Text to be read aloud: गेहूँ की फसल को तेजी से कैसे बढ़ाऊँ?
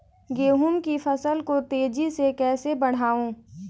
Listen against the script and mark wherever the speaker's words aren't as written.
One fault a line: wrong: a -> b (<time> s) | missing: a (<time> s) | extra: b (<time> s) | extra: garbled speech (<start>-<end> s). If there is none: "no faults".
no faults